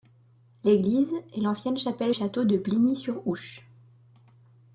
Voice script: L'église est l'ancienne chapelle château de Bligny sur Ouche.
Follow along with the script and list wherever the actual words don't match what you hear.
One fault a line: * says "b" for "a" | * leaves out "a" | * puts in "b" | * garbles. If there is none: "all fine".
all fine